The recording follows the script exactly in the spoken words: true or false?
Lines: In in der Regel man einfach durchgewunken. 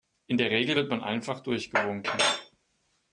false